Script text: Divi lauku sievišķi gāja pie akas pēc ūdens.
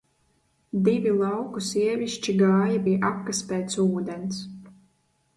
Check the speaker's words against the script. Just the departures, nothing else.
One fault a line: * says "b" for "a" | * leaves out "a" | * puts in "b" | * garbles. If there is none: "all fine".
all fine